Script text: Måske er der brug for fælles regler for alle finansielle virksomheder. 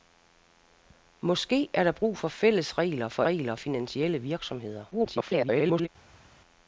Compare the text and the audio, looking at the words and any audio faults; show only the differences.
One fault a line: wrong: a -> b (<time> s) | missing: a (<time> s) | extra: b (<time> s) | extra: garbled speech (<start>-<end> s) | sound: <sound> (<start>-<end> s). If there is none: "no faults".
wrong: alle -> regler (3.2 s)
extra: garbled speech (4.9-5.9 s)